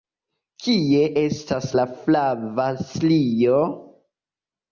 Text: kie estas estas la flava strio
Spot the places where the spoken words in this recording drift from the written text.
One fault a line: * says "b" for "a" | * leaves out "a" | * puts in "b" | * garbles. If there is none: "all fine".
* leaves out "estas"